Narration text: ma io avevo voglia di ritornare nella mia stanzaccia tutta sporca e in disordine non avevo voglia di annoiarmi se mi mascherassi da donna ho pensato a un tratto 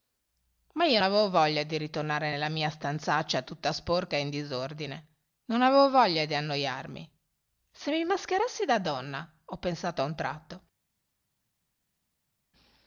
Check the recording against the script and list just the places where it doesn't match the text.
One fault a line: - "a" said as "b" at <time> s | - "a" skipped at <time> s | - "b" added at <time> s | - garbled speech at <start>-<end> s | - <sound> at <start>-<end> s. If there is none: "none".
none